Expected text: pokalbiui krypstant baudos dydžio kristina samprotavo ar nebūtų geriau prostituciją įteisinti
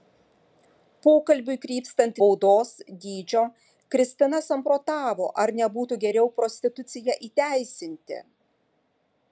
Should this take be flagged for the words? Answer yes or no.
no